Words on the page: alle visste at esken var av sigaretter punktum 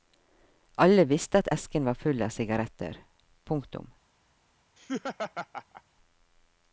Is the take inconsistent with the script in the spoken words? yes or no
yes